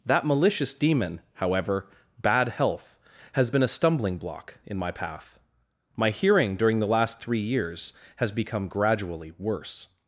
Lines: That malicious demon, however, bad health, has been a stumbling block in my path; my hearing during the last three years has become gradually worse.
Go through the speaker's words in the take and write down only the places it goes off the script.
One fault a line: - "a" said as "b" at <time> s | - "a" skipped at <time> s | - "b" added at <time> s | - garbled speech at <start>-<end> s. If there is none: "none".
none